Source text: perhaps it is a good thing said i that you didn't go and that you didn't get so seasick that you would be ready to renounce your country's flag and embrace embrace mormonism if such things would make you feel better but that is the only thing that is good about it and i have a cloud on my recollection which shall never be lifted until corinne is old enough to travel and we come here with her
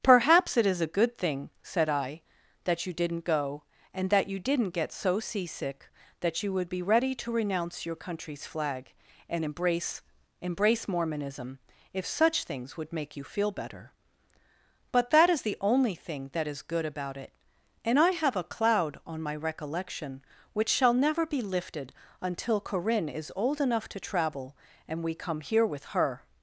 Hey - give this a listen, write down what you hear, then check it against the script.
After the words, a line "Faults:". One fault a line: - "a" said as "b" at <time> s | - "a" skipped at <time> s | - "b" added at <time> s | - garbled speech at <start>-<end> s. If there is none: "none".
perhaps it is a good thing said i that you didn't go and that you didn't get so seasick that you would be ready to renounce your country's flag and embrace embrace mormonism if such things would make you feel better but that is the only thing that is good about it and i have a cloud on my recollection which shall never be lifted until corinne is old enough to travel and we come here with her
Faults:
none